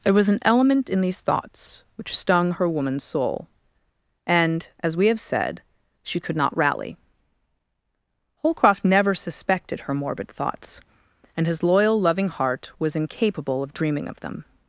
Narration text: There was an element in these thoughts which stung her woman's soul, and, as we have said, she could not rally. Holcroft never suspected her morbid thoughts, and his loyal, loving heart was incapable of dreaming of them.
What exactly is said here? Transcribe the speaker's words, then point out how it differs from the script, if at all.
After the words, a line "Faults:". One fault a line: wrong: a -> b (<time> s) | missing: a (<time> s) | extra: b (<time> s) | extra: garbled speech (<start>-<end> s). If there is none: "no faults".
There was an element in these thoughts which stung her woman's soul, and, as we have said, she could not rally. Holcroft never suspected her morbid thoughts, and his loyal, loving heart was incapable of dreaming of them.
Faults:
no faults